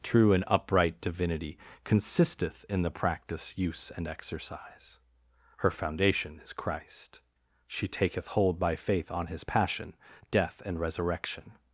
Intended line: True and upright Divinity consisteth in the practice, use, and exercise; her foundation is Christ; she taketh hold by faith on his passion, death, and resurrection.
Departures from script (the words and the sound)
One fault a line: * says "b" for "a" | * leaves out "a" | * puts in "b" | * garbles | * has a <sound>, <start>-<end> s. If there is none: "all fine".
all fine